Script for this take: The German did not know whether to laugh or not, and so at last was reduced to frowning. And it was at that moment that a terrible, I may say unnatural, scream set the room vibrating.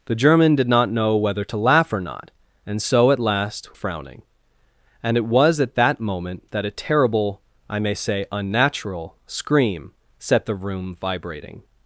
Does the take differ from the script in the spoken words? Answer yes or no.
yes